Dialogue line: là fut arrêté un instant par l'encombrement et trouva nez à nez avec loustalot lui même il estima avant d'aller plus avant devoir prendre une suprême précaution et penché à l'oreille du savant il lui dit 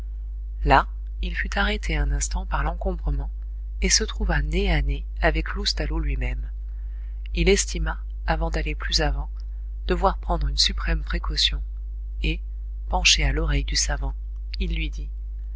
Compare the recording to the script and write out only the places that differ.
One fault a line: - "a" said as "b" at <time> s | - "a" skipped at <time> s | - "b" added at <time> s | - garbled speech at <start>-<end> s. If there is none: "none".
- "il" added at 1.2 s
- "se" added at 3.9 s